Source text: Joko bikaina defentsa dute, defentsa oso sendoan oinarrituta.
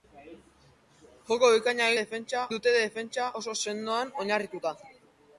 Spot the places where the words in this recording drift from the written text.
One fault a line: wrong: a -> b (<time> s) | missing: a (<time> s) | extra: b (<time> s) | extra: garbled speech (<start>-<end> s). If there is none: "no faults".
no faults